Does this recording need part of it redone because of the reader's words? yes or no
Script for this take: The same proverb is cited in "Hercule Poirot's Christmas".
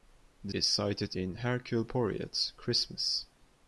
yes